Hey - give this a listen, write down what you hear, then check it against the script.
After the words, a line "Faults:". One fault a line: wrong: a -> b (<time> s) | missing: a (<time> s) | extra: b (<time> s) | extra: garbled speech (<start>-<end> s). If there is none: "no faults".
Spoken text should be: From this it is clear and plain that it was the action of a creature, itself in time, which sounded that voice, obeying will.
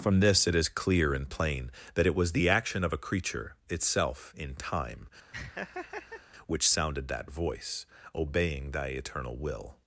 From this it is clear and plain that it was the action of a creature, itself in time, which sounded that voice, obeying thy eternal will.
Faults:
extra: thy eternal (8.7 s)